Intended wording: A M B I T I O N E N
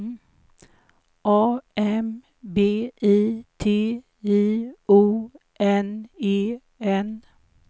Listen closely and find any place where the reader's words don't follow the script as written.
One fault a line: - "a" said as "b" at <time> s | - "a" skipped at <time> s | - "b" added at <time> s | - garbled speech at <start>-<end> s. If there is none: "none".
none